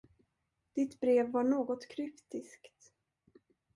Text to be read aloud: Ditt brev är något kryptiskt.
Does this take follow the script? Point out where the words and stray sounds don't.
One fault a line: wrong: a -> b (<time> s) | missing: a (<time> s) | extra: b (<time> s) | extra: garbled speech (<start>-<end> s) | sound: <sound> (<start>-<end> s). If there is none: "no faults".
wrong: är -> var (1.3 s)